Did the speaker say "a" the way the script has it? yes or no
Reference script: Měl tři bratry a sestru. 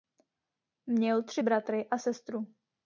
yes